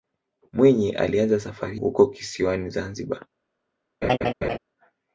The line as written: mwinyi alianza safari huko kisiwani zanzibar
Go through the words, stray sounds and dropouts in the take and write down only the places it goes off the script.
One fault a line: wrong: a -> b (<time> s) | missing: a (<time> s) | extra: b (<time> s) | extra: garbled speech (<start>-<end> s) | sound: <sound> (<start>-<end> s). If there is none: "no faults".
sound: laugh (4.0-4.6 s)